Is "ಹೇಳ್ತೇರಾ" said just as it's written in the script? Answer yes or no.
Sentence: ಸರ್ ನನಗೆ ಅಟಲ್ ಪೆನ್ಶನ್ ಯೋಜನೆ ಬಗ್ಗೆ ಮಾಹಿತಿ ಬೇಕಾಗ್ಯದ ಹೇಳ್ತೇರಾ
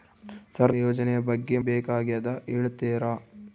yes